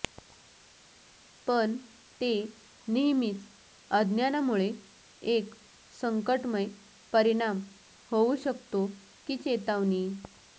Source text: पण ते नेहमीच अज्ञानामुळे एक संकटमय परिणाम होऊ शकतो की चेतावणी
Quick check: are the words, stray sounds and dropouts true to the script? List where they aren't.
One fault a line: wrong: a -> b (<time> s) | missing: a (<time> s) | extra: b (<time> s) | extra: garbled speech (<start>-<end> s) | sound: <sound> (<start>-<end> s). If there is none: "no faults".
no faults